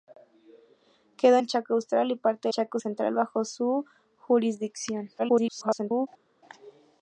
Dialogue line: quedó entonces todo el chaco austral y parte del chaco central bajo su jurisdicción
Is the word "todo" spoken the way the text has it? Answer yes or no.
no